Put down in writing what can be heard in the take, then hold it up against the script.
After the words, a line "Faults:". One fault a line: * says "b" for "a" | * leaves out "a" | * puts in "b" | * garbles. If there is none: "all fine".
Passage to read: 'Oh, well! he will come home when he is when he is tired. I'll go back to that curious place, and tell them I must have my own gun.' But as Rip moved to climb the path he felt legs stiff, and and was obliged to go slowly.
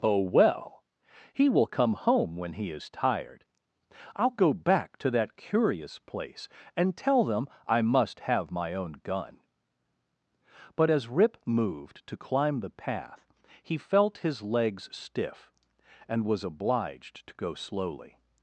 'Oh, well! he will come home when he is tired. I'll go back to that curious place, and tell them I must have my own gun.' But as Rip moved to climb the path he felt his legs stiff, and was obliged to go slowly.
Faults:
* leaves out "when he is"
* puts in "his"
* leaves out "and"